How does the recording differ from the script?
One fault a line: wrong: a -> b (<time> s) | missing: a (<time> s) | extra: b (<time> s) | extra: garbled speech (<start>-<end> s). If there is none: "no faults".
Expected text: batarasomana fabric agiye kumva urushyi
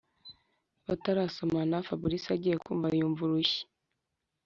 extra: yumva (3.0 s)